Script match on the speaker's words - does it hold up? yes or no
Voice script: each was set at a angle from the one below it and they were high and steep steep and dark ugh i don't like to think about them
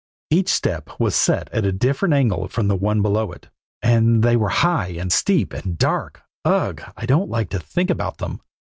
no